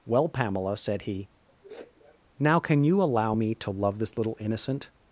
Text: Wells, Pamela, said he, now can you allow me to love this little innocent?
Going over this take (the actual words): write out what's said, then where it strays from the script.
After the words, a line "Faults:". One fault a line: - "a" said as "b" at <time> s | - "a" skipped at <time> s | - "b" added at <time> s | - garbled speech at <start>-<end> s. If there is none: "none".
Well, Pamela, said he, now can you allow me to love this little innocent?
Faults:
- "Wells" said as "Well" at 0.1 s